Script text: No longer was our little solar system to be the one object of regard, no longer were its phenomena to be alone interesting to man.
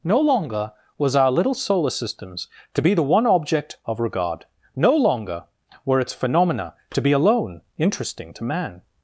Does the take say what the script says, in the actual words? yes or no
no